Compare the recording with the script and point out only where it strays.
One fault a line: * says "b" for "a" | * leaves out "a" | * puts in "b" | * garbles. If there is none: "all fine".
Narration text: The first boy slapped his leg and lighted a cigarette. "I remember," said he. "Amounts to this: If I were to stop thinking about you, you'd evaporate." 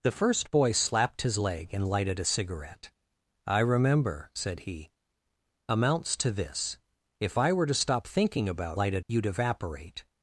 * says "lighted" for "you"